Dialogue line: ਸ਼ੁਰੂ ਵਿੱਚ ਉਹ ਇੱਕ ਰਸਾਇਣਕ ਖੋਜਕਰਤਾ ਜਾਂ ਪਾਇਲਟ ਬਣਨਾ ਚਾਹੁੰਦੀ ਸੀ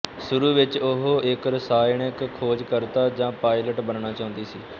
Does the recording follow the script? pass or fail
pass